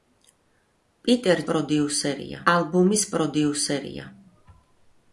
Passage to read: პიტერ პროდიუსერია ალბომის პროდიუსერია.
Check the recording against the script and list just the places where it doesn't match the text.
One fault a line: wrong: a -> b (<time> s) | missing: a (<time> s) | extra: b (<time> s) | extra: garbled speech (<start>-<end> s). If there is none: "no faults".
no faults